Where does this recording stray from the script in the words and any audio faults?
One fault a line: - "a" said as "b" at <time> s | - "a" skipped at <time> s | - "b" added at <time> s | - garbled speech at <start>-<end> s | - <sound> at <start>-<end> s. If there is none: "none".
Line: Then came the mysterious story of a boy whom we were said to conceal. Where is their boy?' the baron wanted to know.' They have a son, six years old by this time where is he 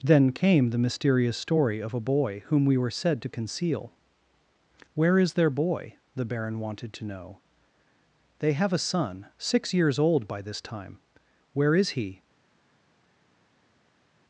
none